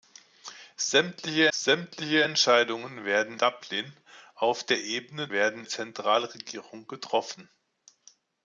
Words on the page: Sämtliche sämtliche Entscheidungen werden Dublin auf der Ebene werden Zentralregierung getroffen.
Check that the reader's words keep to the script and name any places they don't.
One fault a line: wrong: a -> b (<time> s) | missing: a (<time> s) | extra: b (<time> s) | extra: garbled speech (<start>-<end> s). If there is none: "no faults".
no faults